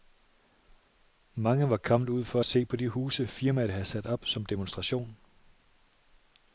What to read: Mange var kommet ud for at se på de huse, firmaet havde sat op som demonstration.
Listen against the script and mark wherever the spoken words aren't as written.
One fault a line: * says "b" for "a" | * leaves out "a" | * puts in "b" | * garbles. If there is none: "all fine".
all fine